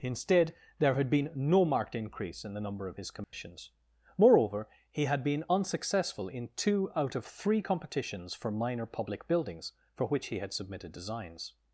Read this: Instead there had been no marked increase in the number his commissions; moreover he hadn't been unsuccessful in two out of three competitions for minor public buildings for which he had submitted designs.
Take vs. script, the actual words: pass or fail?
fail